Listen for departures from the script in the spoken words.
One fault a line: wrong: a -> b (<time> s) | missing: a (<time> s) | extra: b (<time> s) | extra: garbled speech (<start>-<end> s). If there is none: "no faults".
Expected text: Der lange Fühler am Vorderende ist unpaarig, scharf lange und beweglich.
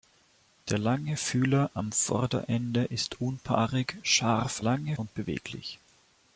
no faults